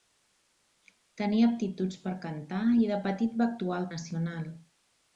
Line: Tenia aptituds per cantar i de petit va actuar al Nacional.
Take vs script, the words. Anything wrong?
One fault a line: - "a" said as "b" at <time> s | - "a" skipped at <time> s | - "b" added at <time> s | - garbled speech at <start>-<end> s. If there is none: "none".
none